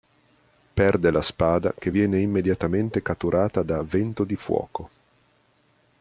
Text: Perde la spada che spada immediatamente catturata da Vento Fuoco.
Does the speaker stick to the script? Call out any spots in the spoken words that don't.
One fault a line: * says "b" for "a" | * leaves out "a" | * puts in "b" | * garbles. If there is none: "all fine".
* says "viene" for "spada"
* puts in "di"